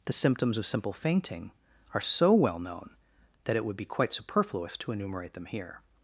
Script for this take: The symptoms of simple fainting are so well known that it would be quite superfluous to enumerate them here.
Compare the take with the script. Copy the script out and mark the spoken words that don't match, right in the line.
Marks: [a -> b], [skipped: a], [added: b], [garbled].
The symptoms of simple fainting are so well known that it would be quite superfluous to enumerate them here.